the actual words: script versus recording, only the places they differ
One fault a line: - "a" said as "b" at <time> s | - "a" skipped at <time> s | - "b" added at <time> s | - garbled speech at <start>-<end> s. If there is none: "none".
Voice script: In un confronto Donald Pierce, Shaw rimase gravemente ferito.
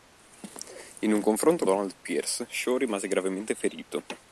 none